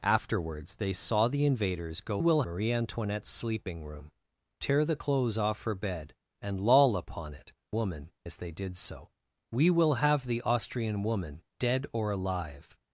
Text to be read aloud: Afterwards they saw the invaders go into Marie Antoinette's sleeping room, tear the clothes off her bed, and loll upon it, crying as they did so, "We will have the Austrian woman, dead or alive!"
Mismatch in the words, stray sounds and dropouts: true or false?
true